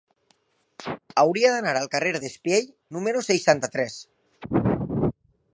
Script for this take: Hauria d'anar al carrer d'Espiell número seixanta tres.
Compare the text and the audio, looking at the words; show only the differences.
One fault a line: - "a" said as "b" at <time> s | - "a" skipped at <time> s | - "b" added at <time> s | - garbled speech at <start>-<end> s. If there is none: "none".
none